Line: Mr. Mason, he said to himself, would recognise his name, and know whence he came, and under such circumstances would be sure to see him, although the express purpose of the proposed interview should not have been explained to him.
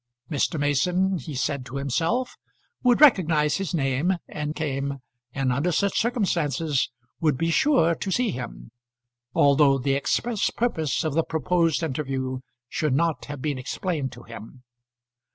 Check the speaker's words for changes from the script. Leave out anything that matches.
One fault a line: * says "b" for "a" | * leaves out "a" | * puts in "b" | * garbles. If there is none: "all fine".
* leaves out "know whence he"